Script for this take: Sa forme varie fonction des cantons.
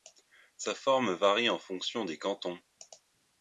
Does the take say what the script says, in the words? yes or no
no